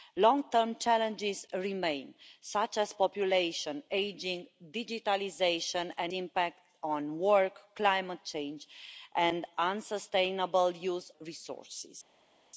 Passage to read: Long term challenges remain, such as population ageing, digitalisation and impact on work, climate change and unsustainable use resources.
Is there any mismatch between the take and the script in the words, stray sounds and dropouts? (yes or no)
no